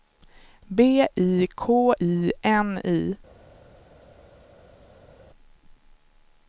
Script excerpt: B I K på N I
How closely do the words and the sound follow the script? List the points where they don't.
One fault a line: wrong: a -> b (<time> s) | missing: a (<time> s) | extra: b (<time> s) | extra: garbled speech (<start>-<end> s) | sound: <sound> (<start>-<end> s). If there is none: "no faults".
wrong: på -> I (2.0 s)